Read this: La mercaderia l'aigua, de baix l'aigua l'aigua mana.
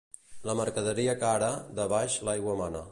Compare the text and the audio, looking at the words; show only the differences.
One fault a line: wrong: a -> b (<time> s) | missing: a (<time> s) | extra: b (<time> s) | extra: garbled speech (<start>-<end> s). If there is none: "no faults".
wrong: l'aigua -> cara (1.2 s)
missing: l'aigua (2.6 s)